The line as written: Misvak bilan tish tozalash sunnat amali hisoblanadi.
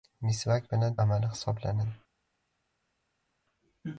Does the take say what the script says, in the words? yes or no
no